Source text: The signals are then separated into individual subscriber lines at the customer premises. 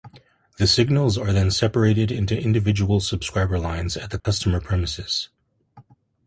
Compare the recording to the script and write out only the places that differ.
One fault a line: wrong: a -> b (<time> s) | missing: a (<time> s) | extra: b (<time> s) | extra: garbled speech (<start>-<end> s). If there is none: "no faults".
no faults